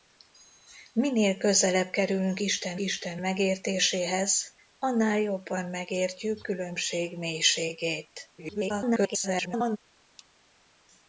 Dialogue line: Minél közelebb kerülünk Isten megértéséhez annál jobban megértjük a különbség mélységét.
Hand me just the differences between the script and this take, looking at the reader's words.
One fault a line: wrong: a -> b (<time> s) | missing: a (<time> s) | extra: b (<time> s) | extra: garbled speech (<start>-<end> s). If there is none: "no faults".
extra: Isten (2.8 s)
missing: a (6.4 s)
extra: garbled speech (8.4-9.8 s)